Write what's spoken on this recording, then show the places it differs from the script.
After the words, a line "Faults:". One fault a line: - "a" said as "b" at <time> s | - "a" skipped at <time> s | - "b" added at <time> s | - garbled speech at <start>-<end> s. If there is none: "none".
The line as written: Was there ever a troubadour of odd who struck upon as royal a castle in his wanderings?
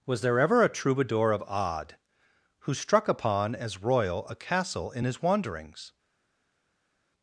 Was there ever a troubadour of odd who struck upon as royal a castle in his wanderings?
Faults:
none